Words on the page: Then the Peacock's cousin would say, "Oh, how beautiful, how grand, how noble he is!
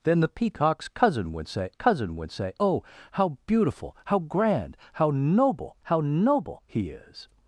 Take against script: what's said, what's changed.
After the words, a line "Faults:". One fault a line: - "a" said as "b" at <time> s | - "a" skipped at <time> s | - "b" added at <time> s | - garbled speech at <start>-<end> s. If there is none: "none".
Then the Peacock's cousin would say cousin would say, "Oh, how beautiful, how grand, how noble how noble he is!
Faults:
- "cousin would say" added at 1.7 s
- "how noble" added at 5.8 s